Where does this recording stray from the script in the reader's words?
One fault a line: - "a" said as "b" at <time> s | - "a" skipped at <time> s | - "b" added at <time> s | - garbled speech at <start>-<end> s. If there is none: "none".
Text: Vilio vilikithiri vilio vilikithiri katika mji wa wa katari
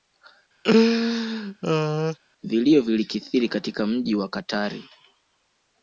- "vilio vilikithiri" skipped at 3.5 s
- "wa" skipped at 4.3 s